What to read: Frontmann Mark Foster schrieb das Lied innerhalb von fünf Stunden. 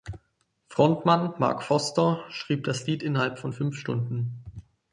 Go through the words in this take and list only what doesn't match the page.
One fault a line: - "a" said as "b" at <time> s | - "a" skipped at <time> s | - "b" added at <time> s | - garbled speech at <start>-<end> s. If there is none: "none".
none